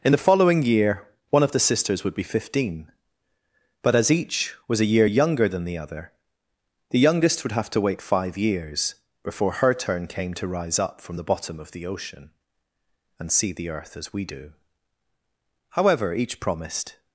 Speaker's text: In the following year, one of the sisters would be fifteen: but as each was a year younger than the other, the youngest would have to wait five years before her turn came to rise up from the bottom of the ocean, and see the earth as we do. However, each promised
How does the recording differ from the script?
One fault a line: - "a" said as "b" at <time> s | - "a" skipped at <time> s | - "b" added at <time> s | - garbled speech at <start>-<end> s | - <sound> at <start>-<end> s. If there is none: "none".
none